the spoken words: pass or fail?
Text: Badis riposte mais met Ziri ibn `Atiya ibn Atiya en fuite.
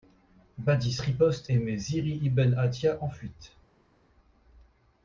fail